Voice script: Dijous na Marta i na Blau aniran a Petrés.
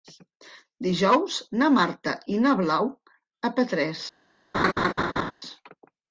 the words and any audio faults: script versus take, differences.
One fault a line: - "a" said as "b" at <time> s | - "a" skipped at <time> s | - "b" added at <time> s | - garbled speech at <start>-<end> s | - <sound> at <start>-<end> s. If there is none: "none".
- "aniran" skipped at 2.9 s
- laugh at 4.5-5.3 s